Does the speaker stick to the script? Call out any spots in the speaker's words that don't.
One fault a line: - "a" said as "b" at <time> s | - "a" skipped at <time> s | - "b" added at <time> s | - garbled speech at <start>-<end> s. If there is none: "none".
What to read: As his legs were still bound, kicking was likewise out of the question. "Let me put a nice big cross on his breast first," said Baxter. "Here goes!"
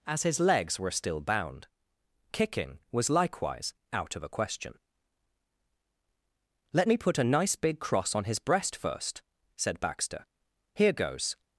- "the" said as "a" at 4.2 s